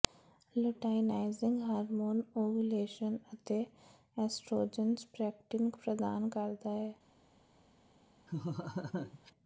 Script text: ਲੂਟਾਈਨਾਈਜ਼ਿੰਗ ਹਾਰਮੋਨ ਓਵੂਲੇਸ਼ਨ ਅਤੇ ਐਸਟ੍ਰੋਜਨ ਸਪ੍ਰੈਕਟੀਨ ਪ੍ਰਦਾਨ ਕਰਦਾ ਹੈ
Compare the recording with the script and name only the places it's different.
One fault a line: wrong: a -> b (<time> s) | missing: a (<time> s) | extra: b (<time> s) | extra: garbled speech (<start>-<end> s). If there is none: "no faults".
no faults